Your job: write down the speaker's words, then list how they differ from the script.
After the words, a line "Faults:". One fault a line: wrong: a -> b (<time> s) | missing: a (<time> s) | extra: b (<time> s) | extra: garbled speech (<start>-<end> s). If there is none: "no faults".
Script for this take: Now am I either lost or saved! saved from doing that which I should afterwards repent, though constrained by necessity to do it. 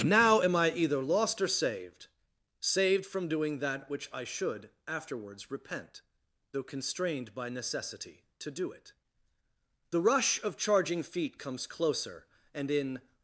Now am I either lost or saved! saved from doing that which I should afterwards repent, though constrained by necessity to do it. The rush of charging feet comes closer, and in
Faults:
extra: The rush of charging feet comes closer and in (9.9 s)